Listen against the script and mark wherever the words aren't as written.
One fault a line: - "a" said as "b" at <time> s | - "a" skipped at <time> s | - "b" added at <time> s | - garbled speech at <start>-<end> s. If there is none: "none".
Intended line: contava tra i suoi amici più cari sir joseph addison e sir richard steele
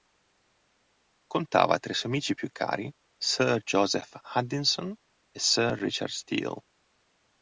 none